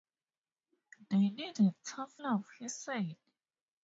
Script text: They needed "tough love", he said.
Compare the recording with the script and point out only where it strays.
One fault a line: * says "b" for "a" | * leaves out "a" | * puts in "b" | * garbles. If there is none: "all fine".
all fine